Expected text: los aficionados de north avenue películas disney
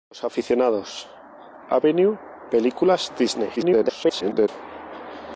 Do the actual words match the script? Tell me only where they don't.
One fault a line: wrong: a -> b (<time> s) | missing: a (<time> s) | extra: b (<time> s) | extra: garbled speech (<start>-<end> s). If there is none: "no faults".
missing: de north (1.1 s)
extra: garbled speech (3.6-4.5 s)